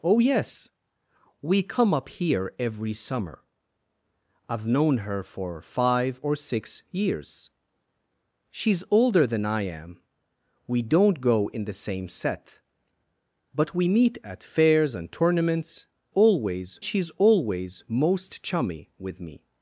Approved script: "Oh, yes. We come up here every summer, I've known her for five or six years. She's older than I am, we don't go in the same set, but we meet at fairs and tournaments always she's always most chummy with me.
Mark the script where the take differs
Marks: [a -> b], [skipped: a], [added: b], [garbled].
"Oh, yes. We come up here every summer, I've known her for five or six years. She's older than I am, we don't go in the same set, but we meet at fairs and tournaments always she's always most chummy with me.